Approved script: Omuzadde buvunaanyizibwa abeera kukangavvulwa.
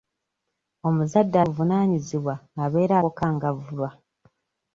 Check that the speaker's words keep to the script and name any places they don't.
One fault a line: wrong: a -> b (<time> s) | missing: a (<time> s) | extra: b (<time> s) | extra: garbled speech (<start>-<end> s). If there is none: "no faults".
no faults